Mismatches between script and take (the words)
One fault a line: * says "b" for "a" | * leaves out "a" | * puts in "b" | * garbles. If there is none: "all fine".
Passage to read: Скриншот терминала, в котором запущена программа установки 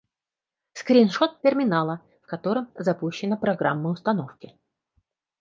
all fine